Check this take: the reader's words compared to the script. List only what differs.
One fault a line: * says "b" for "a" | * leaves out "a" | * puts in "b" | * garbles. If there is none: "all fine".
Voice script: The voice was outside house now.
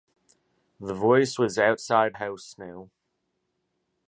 all fine